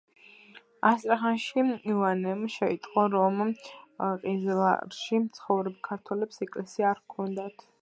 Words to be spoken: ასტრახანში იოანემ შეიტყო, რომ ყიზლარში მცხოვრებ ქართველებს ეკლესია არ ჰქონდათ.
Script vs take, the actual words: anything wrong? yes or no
no